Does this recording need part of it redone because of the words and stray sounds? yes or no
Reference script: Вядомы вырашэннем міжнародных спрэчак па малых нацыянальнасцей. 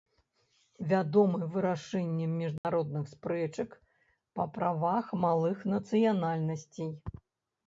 yes